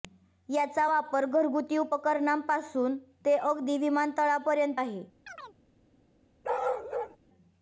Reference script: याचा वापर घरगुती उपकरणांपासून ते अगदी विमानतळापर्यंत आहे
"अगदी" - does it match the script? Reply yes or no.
yes